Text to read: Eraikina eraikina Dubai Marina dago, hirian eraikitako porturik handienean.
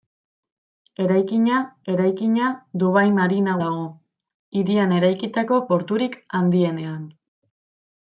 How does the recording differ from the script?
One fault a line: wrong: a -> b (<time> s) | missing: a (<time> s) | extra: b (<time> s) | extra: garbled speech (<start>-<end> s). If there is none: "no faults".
no faults